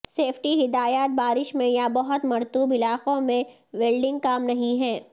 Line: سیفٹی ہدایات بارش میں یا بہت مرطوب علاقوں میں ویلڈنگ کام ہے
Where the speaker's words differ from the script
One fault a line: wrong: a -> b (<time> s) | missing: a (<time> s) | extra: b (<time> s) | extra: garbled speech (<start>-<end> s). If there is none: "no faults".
extra: نہیں (4.4 s)